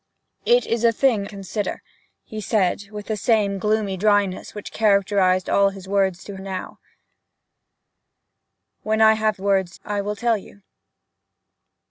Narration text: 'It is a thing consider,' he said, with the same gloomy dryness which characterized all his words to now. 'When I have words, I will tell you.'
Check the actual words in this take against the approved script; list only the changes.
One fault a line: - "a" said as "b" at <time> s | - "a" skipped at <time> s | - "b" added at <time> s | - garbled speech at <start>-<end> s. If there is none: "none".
none